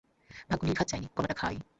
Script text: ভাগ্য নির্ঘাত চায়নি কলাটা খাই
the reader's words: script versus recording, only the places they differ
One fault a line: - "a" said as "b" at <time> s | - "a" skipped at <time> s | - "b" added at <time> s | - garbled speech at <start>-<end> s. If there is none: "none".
none